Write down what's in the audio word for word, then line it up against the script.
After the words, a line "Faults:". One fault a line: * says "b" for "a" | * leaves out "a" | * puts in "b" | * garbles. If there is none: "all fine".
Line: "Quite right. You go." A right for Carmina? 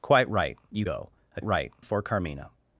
"Quite right. You go." A right for Carmina?
Faults:
all fine